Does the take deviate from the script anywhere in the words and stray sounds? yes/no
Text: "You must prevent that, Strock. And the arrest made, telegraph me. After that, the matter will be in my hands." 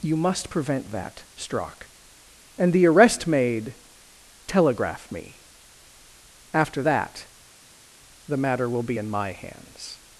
no